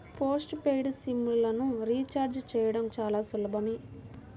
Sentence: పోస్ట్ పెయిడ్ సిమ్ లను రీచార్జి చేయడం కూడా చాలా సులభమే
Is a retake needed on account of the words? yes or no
yes